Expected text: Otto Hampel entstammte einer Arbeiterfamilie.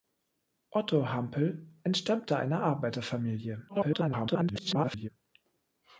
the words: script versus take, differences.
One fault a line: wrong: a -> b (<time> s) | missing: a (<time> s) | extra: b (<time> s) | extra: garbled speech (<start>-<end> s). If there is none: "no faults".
extra: garbled speech (3.7-5.1 s)